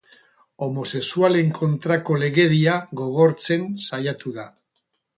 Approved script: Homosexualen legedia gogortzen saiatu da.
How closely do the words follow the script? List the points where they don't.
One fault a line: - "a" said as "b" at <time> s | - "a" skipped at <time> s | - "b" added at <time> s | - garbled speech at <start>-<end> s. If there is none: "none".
- "kontrako" added at 1.6 s